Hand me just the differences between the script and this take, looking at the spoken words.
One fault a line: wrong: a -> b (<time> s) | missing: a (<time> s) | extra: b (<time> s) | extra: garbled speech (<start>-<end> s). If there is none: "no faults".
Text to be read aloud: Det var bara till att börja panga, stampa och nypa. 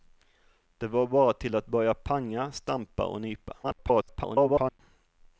extra: garbled speech (3.6-4.8 s)